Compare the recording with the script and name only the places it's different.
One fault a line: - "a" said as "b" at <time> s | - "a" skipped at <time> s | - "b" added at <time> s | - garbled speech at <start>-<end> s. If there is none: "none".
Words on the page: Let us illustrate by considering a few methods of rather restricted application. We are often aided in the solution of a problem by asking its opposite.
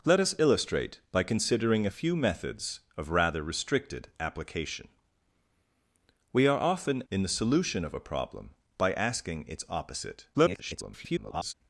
- "aided" skipped at 7.0 s
- garbled speech at 10.3-11.5 s